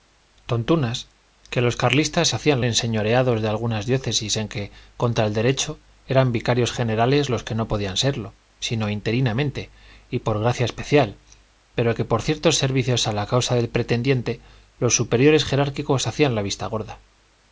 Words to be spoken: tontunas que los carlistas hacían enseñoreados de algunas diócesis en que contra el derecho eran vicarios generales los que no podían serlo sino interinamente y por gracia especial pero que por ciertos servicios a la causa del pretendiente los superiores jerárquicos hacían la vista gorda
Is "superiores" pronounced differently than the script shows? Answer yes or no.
no